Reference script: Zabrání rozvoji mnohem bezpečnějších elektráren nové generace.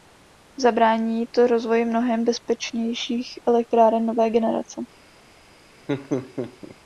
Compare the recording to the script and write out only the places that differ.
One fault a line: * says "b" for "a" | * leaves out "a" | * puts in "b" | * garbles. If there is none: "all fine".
* puts in "to"